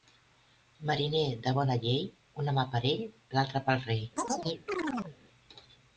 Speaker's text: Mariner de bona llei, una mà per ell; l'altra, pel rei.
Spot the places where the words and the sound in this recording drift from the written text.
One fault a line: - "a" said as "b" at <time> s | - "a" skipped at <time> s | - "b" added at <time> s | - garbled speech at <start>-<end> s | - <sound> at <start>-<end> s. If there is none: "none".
- chirp at 4.2-5.2 s